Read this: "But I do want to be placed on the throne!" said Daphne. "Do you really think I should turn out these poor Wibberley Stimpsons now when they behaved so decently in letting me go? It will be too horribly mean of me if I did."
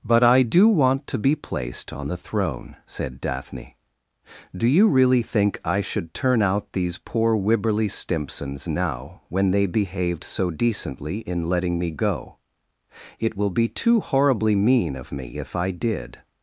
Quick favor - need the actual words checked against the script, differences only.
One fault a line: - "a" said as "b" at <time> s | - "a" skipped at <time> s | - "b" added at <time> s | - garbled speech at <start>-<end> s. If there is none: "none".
none